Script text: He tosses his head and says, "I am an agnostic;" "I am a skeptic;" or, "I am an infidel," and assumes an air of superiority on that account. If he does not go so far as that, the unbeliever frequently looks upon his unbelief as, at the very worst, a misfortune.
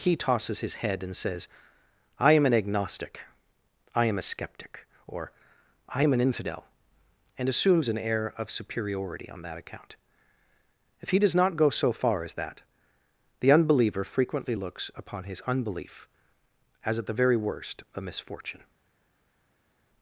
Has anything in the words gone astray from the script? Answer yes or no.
no